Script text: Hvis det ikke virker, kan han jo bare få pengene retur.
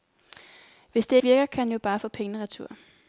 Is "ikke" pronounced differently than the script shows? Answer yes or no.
yes